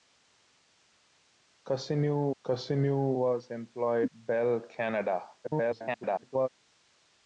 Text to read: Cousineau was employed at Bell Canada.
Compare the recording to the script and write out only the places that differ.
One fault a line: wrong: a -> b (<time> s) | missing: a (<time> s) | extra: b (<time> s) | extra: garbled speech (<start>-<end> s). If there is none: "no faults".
extra: cousineau (2.4 s)
missing: at (4.1 s)
extra: garbled speech (5.4-6.5 s)